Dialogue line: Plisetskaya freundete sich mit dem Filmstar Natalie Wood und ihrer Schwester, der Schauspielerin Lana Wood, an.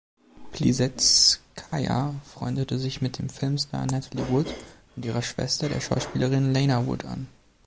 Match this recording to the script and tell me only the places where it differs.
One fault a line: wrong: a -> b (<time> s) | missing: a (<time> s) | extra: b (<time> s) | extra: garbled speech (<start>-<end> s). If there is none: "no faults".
no faults